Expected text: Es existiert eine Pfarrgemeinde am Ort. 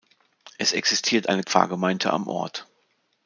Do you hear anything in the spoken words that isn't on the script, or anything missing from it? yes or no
no